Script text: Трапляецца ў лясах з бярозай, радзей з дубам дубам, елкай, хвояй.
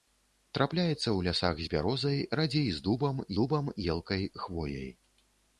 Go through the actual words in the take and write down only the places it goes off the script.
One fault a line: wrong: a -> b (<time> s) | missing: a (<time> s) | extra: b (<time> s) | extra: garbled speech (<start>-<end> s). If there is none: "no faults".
no faults